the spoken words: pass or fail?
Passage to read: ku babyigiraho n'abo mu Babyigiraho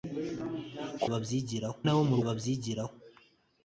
pass